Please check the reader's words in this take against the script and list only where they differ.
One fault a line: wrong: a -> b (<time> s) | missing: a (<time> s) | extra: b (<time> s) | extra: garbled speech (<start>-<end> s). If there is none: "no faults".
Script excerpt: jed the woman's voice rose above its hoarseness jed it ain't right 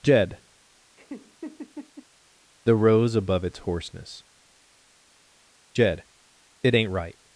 missing: woman's voice (2.8 s)